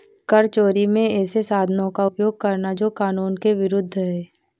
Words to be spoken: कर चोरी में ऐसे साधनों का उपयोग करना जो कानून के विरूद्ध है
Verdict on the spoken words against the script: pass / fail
pass